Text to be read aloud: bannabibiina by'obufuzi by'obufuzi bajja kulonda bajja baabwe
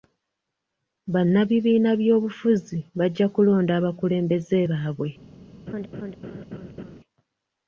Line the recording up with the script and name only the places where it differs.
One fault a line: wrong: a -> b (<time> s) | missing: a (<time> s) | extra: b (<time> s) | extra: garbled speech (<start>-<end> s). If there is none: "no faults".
missing: by'obufuzi (2.8 s)
wrong: bajja -> abakulembeze (3.8 s)